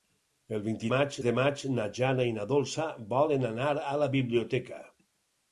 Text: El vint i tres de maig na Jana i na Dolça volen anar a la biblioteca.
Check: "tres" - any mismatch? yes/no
yes